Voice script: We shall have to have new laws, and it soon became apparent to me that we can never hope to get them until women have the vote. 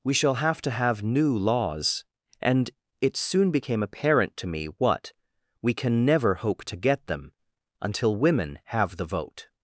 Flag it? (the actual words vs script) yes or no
yes